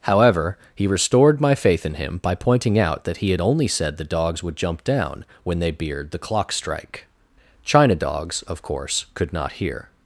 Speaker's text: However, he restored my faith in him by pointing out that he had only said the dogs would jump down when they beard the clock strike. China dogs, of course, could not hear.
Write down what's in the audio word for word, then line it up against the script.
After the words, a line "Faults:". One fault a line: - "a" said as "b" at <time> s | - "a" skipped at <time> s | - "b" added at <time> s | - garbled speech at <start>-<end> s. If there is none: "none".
However, he restored my faith in him by pointing out that he had only said the dogs would jump down when they beard the clock strike. China dogs, of course, could not hear.
Faults:
none